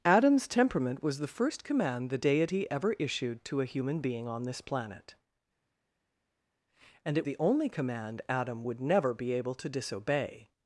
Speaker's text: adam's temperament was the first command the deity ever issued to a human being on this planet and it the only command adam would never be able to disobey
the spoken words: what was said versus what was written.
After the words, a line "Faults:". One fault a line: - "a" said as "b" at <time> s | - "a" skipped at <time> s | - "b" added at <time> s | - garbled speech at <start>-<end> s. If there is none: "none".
adam's temperament was the first command the deity ever issued to a human being on this planet and it the only command adam would never be able to disobey
Faults:
none